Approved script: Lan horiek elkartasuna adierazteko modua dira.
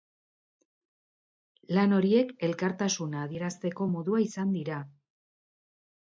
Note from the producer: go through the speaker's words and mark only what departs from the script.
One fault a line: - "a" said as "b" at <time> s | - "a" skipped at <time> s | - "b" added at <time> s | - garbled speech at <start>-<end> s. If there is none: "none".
- "izan" added at 4.3 s